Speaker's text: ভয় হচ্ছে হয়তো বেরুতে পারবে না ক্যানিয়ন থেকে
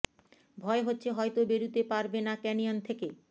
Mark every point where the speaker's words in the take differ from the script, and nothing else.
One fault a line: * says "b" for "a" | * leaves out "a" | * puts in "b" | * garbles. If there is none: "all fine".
all fine